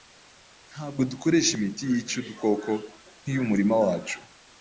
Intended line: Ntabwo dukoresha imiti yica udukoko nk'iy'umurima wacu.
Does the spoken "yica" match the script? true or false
true